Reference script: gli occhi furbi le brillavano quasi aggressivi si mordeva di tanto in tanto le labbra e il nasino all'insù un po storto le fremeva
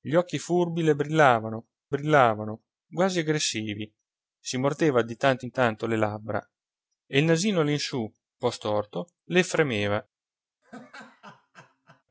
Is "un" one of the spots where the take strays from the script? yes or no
yes